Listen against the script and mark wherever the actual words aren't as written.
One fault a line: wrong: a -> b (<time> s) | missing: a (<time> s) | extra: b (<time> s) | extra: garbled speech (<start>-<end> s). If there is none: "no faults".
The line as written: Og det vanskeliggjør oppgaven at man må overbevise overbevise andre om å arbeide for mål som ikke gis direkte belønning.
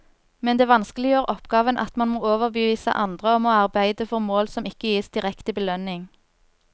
wrong: Og -> Men (0.5 s)
missing: overbevise (2.9 s)